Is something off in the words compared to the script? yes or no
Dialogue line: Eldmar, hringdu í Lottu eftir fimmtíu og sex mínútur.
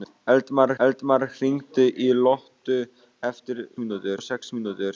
yes